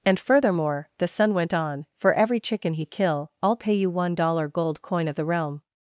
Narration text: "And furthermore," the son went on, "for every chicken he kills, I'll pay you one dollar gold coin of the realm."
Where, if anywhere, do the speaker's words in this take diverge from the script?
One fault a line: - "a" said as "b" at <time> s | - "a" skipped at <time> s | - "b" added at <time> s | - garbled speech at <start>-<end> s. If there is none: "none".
- "kills" said as "kill" at 2.9 s